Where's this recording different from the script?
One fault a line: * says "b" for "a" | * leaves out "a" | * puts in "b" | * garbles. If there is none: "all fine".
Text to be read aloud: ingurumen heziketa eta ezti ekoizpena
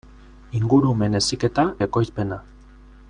* leaves out "eta ezti"